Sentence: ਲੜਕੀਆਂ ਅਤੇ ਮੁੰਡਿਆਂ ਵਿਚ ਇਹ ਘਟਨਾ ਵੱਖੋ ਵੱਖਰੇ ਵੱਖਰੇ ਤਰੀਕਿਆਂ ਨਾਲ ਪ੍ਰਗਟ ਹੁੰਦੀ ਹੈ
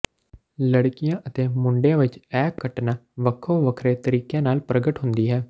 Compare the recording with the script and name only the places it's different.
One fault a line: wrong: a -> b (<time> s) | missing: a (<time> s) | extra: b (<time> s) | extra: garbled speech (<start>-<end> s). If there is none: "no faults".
missing: ਵੱਖਰੇ (4.0 s)